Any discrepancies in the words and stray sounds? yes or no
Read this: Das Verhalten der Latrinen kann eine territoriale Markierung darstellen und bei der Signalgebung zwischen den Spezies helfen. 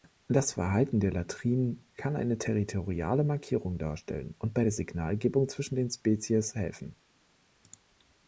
no